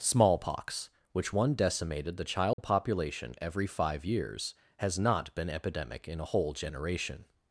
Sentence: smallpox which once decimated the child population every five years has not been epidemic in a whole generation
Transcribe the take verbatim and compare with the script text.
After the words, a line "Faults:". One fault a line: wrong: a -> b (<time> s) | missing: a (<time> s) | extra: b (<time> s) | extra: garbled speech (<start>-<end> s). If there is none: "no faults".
smallpox which one decimated the child population every five years has not been epidemic in a whole generation
Faults:
wrong: once -> one (1.3 s)